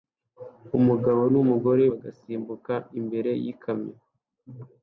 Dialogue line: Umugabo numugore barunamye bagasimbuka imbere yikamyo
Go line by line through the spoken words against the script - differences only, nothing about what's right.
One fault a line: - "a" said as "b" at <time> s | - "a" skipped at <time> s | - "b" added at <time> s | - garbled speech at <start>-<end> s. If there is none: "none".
- "barunamye" skipped at 1.8 s